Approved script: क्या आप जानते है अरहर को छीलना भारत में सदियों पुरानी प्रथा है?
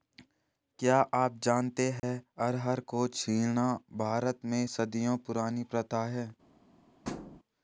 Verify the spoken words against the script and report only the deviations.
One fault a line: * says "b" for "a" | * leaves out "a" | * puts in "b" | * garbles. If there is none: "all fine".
all fine